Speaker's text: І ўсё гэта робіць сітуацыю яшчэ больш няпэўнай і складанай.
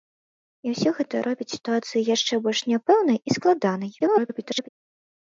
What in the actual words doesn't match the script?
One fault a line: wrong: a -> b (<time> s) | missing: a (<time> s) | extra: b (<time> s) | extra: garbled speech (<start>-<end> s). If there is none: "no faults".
extra: garbled speech (4.0-4.7 s)